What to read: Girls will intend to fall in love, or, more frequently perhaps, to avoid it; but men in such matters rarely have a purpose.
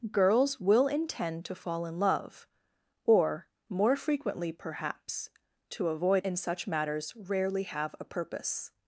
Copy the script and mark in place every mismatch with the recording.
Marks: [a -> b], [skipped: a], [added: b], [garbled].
Girls will intend to fall in love, or, more frequently perhaps, to avoid [skipped: it; but men] in such matters rarely have a purpose.